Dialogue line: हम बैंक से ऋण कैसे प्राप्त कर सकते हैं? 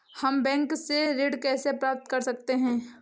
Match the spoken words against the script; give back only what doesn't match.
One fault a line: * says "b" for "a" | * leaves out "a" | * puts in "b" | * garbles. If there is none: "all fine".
all fine